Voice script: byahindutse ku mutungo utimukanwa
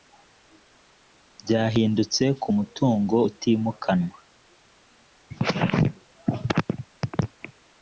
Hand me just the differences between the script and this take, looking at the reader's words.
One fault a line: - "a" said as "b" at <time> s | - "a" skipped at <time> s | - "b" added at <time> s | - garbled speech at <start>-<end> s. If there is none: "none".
none